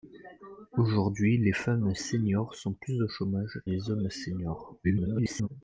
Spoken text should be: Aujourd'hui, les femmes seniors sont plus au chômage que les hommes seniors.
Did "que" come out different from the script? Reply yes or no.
yes